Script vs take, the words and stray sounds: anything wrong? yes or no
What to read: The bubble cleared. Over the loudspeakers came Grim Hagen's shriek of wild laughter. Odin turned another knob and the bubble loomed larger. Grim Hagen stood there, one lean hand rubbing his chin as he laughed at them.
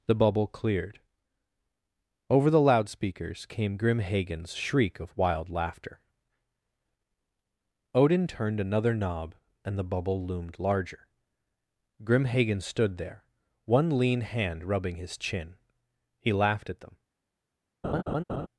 yes